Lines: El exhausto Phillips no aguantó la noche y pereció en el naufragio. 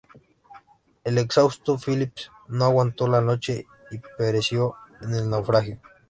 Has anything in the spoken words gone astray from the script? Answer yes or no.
no